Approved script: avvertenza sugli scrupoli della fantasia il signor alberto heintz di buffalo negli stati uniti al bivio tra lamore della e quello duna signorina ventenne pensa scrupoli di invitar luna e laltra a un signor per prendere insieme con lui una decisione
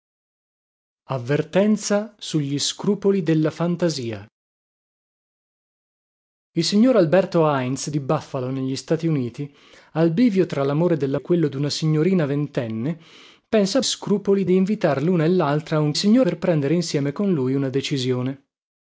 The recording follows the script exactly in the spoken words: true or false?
true